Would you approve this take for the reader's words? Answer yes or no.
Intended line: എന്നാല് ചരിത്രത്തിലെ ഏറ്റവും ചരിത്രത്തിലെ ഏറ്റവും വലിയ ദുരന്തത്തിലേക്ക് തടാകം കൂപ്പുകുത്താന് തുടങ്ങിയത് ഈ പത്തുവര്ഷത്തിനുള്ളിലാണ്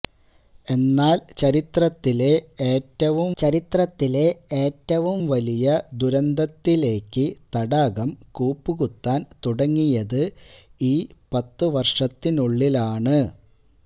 yes